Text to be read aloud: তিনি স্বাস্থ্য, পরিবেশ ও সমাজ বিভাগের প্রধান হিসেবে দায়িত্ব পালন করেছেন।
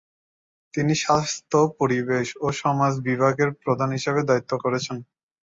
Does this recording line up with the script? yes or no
no